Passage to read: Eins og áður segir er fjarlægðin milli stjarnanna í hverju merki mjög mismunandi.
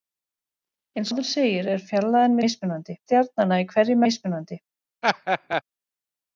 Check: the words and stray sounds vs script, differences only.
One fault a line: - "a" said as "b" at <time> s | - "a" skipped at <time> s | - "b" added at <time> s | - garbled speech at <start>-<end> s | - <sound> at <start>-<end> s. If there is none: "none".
- "og" skipped at 1.1 s
- "milli" said as "mismunandi" at 2.4 s
- "merki mjög" skipped at 4.0 s
- laugh at 5.0-5.6 s